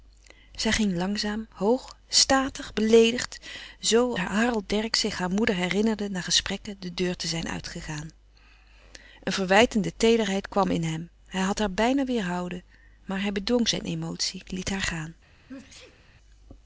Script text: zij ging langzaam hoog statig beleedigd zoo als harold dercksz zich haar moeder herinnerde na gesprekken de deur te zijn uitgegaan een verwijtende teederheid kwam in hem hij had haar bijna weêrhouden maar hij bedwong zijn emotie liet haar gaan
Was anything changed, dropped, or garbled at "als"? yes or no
yes